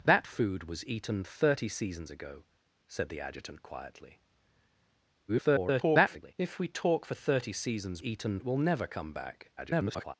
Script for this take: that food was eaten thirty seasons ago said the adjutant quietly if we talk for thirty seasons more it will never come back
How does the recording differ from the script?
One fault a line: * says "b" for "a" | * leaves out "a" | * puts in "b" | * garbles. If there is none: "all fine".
* garbles
* says "eaten" for "more"
* garbles